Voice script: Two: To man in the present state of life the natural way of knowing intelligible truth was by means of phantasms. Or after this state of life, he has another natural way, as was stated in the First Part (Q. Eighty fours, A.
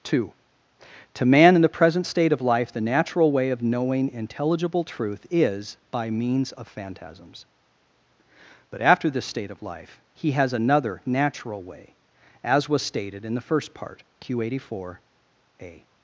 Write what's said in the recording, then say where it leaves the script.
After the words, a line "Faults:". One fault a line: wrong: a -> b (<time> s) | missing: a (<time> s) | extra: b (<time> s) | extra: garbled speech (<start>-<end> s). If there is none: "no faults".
Two: To man in the present state of life the natural way of knowing intelligible truth is by means of phantasms. But after this state of life, he has another natural way, as was stated in the First Part (Q. Eighty four, A.
Faults:
wrong: was -> is (5.3 s)
wrong: Or -> But (8.7 s)
wrong: fours -> four (14.7 s)